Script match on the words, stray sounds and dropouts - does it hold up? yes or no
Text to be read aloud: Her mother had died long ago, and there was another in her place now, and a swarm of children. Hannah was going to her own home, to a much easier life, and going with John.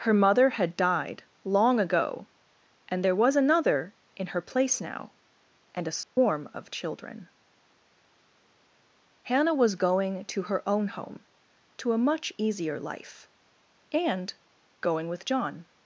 no